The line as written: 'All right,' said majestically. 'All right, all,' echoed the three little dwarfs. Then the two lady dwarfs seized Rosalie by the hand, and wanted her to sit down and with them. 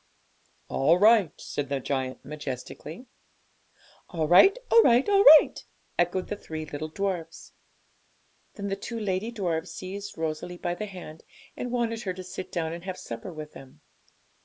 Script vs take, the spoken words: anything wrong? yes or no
yes